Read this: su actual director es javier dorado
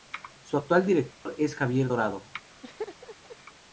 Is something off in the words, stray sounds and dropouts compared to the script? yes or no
yes